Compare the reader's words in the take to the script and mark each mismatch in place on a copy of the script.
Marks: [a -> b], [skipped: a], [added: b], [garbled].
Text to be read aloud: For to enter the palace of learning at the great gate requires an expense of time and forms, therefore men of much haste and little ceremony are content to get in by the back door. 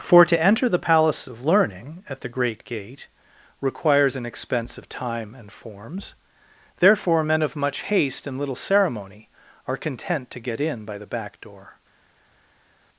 For to enter the palace of learning at the great gate requires an expense of time and forms, therefore men of much haste and little ceremony are content to get in by the back door.